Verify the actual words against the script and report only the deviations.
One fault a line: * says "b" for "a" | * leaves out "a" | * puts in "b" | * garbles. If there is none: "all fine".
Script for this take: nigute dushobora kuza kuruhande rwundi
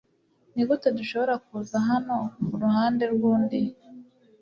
* puts in "hano"